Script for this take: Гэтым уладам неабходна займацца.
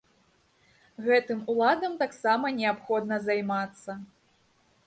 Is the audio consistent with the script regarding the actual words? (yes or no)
no